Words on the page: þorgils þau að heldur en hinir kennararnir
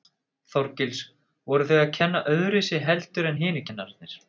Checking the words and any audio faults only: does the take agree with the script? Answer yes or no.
no